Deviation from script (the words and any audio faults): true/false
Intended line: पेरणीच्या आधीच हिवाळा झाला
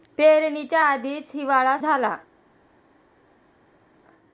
false